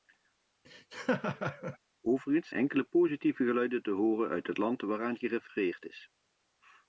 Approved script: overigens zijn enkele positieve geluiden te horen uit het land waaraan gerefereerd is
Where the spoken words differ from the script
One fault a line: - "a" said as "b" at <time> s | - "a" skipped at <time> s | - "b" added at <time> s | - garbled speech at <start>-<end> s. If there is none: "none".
- "zijn" skipped at 2.5 s